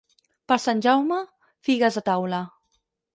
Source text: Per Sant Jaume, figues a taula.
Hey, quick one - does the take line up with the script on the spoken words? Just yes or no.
yes